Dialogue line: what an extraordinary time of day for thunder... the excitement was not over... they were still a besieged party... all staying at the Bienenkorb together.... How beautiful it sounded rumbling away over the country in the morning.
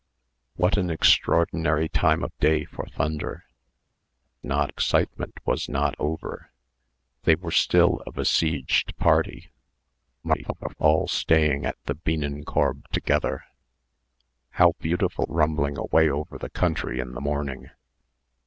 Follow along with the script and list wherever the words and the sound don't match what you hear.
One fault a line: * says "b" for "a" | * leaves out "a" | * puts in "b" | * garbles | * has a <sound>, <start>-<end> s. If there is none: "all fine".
* says "not" for "the"
* garbles
* leaves out "it sounded"